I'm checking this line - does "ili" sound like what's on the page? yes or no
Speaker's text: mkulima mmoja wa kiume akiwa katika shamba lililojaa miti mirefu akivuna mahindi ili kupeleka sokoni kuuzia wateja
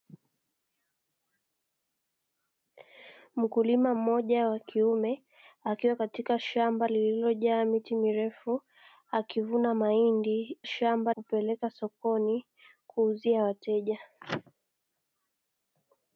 no